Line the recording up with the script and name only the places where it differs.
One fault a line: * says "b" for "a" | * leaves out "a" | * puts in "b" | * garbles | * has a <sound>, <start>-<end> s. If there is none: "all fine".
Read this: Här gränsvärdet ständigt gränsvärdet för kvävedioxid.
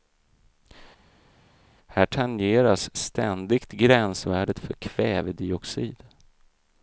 * says "tangeras" for "gränsvärdet"